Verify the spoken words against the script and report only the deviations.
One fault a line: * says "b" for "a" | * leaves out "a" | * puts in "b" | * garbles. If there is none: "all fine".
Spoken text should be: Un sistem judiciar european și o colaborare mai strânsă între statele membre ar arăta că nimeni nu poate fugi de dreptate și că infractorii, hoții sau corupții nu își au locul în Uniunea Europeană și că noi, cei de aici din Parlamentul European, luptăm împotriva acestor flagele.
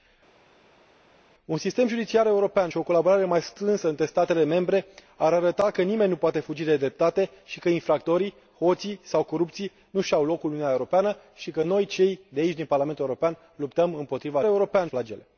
* says "european" for "acestor"